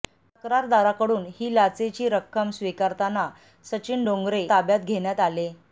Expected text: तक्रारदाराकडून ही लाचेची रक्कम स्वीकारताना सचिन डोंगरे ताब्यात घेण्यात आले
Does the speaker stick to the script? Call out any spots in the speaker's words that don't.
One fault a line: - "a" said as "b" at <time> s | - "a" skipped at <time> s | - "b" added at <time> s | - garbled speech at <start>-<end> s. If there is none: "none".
none